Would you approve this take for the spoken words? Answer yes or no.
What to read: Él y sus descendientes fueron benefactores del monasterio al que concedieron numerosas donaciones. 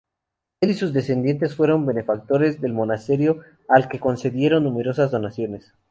yes